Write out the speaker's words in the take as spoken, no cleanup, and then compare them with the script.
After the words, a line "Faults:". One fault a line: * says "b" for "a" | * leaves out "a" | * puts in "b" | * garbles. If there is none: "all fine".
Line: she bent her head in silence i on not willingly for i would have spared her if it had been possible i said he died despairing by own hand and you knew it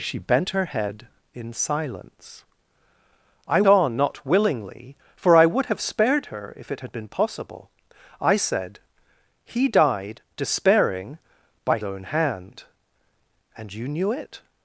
she bent her head in silence i on not willingly for i would have spared her if it had been possible i said he died despairing by own hand and you knew it
Faults:
all fine